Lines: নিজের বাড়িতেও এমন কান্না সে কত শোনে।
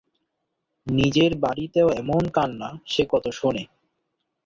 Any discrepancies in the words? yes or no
no